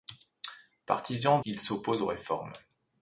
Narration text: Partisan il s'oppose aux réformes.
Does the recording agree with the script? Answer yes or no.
yes